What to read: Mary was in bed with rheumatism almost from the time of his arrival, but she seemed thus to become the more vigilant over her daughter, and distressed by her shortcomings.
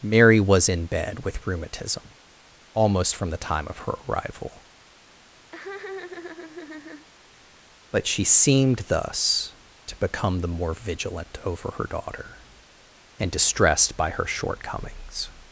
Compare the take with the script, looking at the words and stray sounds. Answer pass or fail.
fail